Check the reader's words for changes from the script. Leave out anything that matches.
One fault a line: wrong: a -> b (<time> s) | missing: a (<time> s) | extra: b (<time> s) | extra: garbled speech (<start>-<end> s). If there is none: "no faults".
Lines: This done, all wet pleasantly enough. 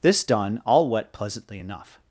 no faults